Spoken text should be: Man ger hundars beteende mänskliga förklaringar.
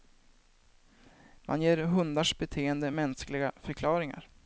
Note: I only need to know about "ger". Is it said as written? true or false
true